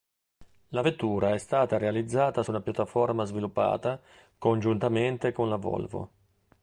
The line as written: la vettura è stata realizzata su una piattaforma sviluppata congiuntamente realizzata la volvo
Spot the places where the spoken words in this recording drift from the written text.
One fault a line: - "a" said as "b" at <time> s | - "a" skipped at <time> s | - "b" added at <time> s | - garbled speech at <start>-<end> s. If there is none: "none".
- "realizzata" said as "con" at 5.3 s